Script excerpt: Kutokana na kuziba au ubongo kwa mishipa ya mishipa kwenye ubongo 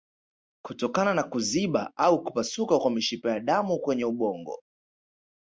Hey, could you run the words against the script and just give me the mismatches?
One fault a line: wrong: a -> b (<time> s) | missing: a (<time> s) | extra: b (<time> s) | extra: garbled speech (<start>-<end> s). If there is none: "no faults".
wrong: ubongo -> kupasuka (2.2 s)
wrong: mishipa -> damu (3.4 s)